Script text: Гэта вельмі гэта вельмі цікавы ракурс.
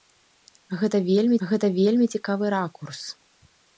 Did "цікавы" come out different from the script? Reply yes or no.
no